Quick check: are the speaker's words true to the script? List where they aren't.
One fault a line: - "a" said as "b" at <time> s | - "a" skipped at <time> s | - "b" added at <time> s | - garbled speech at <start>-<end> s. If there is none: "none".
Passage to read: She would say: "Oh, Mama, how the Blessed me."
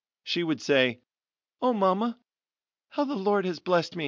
- "Lord has" added at 3.2 s